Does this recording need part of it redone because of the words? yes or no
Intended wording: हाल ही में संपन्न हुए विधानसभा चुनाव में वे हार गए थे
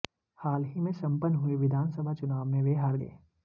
yes